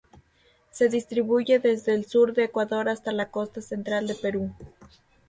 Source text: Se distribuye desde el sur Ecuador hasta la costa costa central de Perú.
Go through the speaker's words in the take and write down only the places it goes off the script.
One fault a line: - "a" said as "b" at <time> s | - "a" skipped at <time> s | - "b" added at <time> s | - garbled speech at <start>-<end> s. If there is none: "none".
- "de" added at 2.3 s
- "costa" skipped at 3.6 s